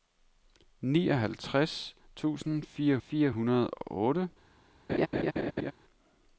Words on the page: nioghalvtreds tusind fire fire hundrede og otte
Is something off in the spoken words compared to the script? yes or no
no